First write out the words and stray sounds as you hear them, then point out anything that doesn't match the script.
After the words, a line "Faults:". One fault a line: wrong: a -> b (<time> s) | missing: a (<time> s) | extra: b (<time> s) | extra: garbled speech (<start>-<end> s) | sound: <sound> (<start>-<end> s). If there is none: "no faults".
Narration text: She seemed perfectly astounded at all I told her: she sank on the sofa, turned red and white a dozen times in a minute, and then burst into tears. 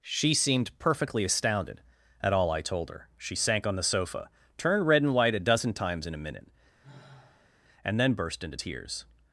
She seemed perfectly astounded at all I told her: she sank on the sofa, turned red and white a dozen times in a minute, and then burst into tears.
Faults:
sound: sigh (6.8-7.5 s)